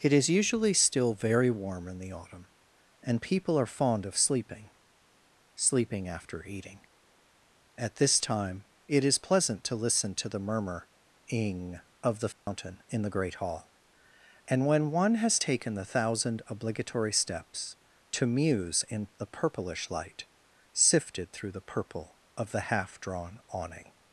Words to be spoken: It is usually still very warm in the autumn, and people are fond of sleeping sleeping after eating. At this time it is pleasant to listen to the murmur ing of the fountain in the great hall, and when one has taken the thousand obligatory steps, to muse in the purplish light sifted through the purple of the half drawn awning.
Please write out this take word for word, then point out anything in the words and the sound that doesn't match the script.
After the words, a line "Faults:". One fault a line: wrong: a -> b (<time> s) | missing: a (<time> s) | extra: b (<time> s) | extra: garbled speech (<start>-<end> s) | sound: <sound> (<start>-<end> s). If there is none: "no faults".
It is usually still very warm in the autumn, and people are fond of sleeping sleeping after eating. At this time it is pleasant to listen to the murmur ing of the fountain in the great hall, and when one has taken the thousand obligatory steps, to muse in the purplish light sifted through the purple of the half drawn awning.
Faults:
sound: dropout (12.3-12.5 s)